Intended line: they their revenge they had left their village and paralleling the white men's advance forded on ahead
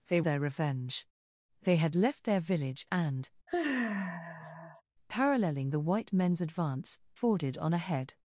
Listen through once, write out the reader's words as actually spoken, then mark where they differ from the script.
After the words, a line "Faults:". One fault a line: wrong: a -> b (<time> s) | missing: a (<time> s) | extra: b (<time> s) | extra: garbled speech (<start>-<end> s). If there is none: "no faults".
they their revenge they had left their village and paralleling the white men's advance forded on ahead
Faults:
no faults